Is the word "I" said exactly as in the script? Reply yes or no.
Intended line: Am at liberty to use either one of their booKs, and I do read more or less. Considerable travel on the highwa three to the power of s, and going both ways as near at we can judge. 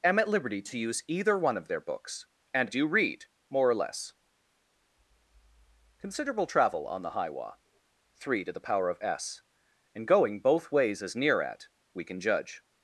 no